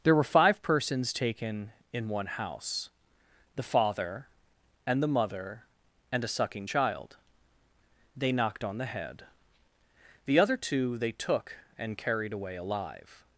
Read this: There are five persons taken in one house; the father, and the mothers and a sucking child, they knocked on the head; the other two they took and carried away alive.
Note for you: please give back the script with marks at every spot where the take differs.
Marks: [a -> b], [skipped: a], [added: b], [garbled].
There [are -> were] five persons taken in one house; the father, and the [mothers -> mother] and a sucking child, they knocked on the head; the other two they took and carried away alive.